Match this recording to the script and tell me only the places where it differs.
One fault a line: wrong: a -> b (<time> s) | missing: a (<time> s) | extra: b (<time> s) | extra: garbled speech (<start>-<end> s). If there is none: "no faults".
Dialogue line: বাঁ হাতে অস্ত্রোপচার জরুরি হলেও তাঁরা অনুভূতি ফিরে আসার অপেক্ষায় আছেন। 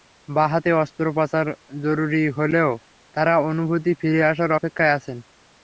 no faults